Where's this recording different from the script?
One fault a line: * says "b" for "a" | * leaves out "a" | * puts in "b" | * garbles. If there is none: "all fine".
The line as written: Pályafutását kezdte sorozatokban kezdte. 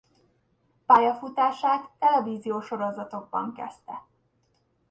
* says "televíziós" for "kezdte"